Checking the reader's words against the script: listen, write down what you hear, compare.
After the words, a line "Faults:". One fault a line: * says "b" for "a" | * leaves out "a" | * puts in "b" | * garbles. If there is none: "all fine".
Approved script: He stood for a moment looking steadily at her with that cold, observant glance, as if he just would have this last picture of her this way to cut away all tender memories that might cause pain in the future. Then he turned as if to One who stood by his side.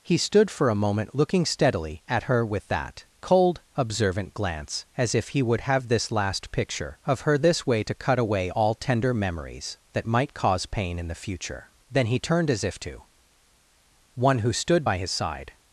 He stood for a moment looking steadily at her with that cold, observant glance, as if he would have this last picture of her this way to cut away all tender memories that might cause pain in the future. Then he turned as if to One who stood by his side.
Faults:
* leaves out "just"